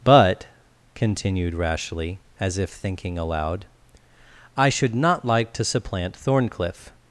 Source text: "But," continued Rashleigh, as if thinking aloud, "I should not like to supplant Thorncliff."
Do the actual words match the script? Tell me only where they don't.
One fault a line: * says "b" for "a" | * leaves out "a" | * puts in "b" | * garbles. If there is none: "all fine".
all fine